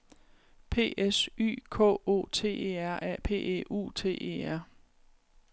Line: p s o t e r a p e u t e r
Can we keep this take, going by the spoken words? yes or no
no